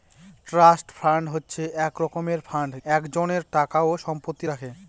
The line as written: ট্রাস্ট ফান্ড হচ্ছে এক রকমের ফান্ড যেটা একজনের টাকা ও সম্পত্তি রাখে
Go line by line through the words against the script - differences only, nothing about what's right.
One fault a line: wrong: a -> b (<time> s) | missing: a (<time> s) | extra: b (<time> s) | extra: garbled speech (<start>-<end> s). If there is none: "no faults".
missing: যেটা (2.7 s)